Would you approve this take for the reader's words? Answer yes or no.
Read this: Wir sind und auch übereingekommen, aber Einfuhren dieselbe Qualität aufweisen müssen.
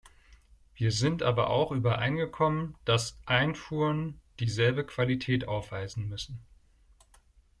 no